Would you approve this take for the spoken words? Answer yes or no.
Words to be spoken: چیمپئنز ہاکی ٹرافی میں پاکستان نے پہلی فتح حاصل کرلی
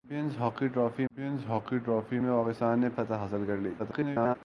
no